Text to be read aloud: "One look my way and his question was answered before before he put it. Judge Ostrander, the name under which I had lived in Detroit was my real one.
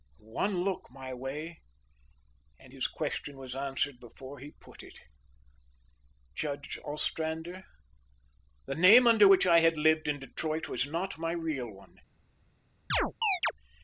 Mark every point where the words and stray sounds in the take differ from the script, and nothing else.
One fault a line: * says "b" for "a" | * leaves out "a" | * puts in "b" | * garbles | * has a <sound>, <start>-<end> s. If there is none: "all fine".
* leaves out "before"
* puts in "not"
* has a chirp, 12.9-13.5 s